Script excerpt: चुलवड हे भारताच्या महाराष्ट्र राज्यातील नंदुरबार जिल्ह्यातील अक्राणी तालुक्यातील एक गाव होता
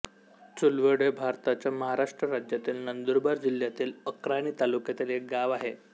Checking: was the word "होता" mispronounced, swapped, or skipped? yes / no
yes